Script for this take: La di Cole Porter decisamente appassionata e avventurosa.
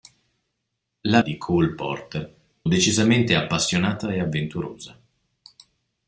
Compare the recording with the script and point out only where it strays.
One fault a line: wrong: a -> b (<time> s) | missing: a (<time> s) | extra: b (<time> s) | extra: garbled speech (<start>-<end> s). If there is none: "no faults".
no faults